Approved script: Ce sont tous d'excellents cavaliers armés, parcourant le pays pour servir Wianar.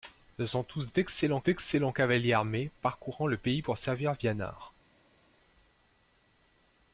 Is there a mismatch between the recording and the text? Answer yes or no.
yes